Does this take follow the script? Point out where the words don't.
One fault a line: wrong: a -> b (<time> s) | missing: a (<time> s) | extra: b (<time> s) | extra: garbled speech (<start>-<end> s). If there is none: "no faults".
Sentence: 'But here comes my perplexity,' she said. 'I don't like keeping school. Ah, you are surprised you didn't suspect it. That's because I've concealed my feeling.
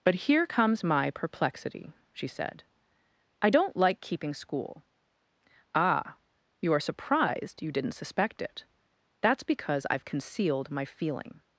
no faults